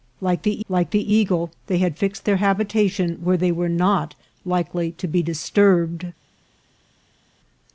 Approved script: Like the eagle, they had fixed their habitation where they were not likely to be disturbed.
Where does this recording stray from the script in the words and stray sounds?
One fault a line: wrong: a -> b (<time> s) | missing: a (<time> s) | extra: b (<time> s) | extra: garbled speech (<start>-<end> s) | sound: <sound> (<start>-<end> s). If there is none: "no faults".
extra: like the (0.7 s)